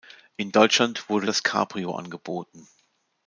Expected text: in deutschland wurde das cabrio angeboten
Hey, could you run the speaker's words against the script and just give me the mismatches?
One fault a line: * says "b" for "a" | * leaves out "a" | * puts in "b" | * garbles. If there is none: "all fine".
all fine